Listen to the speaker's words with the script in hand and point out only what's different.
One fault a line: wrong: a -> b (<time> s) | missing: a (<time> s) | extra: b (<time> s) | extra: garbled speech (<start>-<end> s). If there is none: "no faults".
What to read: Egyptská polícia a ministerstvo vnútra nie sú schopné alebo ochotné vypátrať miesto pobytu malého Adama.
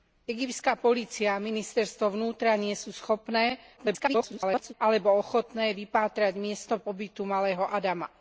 extra: garbled speech (3.8-4.7 s)